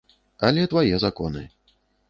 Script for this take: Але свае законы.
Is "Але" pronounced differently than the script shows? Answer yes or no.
no